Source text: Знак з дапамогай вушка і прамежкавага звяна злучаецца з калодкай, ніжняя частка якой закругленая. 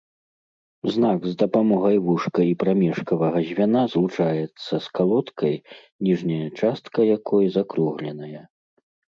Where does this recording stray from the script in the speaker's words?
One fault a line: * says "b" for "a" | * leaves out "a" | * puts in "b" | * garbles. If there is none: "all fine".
all fine